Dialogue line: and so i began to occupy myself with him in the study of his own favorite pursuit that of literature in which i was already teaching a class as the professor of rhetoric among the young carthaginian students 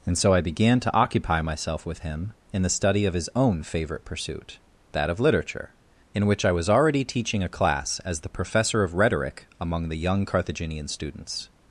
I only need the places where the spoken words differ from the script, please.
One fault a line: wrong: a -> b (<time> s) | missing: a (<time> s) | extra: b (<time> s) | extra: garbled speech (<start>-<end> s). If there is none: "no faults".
no faults